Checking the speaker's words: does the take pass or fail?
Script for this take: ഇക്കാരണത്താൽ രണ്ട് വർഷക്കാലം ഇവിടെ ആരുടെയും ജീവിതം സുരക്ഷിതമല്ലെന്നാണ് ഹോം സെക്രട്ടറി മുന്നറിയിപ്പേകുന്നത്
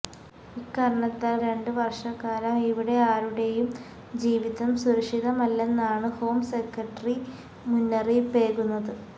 pass